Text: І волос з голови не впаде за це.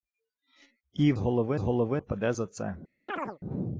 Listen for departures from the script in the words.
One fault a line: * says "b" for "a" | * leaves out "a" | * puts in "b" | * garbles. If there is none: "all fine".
* says "голови" for "волос"
* leaves out "не"